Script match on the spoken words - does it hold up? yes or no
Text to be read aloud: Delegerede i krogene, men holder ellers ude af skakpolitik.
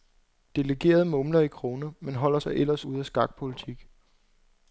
no